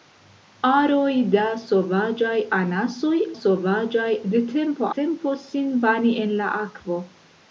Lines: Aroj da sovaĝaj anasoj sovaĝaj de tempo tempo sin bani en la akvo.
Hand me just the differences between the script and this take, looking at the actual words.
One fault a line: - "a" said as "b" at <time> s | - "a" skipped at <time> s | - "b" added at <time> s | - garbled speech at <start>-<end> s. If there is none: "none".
none